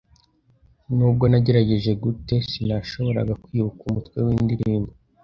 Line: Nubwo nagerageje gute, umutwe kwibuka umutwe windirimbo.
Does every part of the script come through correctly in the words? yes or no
no